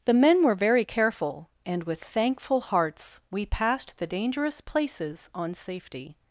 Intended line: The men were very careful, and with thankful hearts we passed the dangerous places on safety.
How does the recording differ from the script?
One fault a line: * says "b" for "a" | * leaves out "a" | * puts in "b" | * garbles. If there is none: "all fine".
all fine